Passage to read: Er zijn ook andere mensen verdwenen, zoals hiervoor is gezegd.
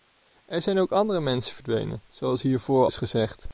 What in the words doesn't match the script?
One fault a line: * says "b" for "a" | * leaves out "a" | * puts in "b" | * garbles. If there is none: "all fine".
all fine